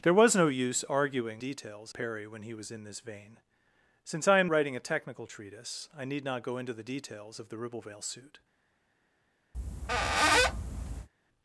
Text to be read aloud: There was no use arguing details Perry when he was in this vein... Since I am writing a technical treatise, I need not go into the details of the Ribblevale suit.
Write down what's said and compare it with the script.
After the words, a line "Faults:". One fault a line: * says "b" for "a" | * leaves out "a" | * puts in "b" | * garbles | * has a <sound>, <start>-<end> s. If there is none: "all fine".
There was no use arguing details Perry when he was in this vein... Since I am writing a technical treatise, I need not go into the details of the Ribblevale suit.
Faults:
* has a squeak, 9.5-11.1 s